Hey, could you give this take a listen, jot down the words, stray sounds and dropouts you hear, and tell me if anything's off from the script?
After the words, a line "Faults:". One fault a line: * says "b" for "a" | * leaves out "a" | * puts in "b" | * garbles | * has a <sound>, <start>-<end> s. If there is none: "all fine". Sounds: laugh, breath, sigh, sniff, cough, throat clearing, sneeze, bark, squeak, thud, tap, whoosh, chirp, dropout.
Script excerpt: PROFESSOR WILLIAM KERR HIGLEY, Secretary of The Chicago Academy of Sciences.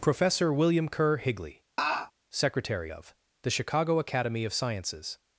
PROFESSOR WILLIAM KERR HIGLEY, Secretary of The Chicago Academy of Sciences.
Faults:
* has a laugh, 1.8-2.1 s